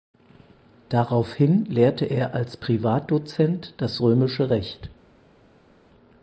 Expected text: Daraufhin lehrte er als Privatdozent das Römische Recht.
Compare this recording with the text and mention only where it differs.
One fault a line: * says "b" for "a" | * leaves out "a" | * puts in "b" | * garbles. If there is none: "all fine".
all fine